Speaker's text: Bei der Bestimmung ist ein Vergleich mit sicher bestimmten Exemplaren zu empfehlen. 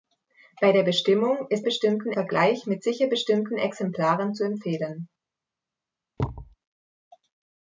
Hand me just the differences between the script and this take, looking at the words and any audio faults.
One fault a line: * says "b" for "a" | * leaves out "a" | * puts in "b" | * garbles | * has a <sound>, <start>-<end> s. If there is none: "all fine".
* says "bestimmten" for "ein"
* has a thud, 6.2-6.6 s